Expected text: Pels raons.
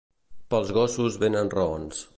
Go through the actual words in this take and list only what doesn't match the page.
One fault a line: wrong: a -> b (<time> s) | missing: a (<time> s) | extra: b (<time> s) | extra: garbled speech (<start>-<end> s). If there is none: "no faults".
extra: gossos venen (0.8 s)